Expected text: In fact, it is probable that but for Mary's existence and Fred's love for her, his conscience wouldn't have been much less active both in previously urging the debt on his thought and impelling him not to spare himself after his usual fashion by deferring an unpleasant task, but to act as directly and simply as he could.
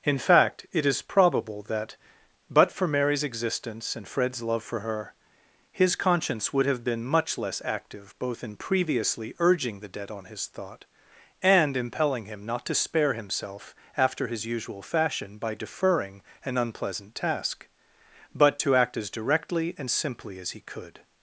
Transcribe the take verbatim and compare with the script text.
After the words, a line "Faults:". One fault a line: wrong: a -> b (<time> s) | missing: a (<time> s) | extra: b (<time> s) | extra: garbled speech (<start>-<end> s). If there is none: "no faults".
In fact, it is probable that but for Mary's existence and Fred's love for her, his conscience would have been much less active both in previously urging the debt on his thought and impelling him not to spare himself after his usual fashion by deferring an unpleasant task, but to act as directly and simply as he could.
Faults:
wrong: wouldn't -> would (6.5 s)